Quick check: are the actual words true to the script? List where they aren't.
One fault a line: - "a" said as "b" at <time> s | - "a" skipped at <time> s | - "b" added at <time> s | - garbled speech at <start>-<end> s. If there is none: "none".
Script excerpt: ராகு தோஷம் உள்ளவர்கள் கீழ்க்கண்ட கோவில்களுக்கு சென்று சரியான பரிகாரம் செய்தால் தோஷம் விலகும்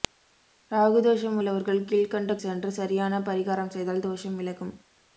- "கோவில்களுக்கு" skipped at 2.4 s